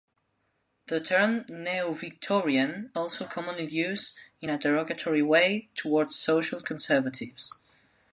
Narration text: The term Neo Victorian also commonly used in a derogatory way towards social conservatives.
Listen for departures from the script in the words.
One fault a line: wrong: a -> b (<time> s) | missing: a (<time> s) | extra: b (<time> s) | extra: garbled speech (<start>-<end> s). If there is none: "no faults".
no faults